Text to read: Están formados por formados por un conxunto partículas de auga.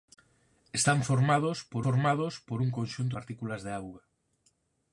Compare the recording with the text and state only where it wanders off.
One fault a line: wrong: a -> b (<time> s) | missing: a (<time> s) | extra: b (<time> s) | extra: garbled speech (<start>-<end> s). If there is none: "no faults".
no faults